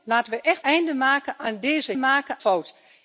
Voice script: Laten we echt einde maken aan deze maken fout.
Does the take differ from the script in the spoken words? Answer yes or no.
no